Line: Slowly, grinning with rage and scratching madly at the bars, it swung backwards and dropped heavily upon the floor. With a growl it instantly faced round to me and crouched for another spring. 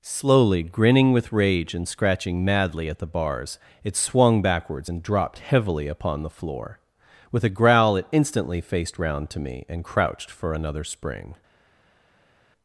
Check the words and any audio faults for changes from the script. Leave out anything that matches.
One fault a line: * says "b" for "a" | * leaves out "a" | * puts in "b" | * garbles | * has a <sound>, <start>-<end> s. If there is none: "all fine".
all fine